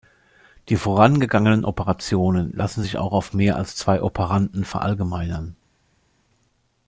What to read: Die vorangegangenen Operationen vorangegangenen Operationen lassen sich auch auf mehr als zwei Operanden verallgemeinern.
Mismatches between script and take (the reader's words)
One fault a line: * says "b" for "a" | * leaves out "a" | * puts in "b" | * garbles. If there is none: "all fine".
* leaves out "vorangegangenen Operationen"